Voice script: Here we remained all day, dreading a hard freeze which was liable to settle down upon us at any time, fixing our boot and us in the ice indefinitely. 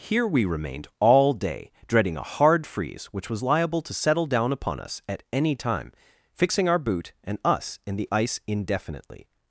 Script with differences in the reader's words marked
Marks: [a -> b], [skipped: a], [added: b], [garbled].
Here we remained all day, dreading a hard freeze which was liable to settle down upon us at any time, fixing our boot and us in the ice indefinitely.